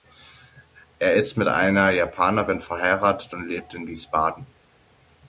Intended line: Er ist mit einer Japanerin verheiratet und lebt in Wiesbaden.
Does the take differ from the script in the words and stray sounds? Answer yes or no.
no